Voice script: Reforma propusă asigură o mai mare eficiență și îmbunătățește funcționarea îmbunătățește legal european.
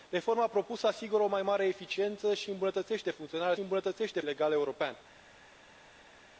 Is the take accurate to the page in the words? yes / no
yes